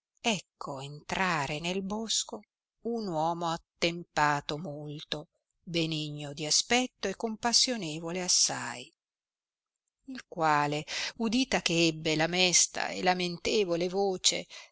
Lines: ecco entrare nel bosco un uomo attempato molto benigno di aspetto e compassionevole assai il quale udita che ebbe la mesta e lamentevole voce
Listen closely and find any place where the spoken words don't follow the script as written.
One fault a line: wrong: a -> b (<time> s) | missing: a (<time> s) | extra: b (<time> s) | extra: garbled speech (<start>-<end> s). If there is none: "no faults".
no faults